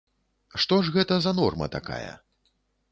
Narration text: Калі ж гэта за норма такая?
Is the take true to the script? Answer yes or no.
no